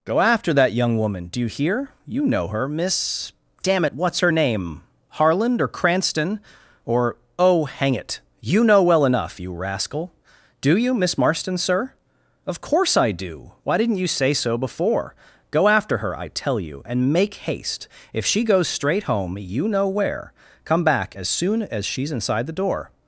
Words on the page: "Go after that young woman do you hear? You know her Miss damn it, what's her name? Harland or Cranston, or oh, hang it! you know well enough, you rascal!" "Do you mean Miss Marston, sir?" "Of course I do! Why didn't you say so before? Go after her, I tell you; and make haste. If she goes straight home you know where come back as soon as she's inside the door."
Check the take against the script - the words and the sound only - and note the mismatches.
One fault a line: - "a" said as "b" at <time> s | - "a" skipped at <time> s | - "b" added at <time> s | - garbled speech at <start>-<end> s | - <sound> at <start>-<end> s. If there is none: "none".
- "mean" skipped at 10.9 s